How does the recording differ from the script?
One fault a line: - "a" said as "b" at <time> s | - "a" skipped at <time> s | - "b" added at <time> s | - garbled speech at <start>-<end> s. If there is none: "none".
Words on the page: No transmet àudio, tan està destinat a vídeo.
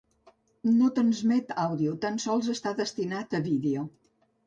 - "sols" added at 2.3 s